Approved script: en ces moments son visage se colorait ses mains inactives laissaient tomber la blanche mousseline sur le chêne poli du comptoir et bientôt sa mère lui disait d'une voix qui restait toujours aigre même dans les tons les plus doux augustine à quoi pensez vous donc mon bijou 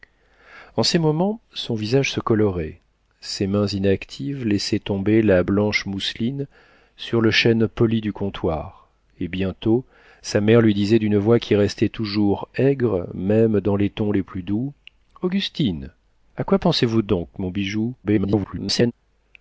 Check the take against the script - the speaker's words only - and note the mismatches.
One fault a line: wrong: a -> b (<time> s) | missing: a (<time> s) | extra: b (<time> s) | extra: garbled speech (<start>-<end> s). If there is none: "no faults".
extra: garbled speech (18.0-18.9 s)